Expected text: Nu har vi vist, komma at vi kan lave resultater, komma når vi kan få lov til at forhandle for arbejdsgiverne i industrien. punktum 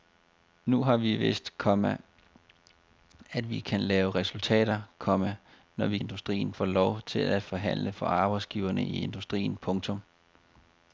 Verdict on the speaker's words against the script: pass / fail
fail